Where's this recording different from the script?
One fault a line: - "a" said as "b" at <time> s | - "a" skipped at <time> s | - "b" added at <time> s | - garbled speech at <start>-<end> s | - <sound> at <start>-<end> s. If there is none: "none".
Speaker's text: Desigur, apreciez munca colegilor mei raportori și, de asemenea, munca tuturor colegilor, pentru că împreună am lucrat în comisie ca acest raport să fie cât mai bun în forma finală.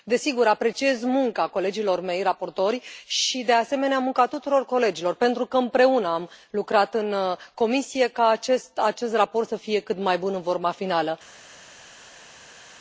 none